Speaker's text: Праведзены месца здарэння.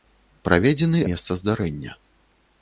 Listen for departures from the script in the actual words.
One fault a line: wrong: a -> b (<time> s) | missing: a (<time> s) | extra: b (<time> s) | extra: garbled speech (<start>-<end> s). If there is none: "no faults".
no faults